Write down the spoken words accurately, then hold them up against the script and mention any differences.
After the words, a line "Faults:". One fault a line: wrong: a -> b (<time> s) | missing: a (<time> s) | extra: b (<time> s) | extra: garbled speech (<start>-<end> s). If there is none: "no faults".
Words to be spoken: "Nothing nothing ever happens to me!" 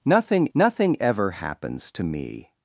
"Nothing nothing ever happens to me!"
Faults:
no faults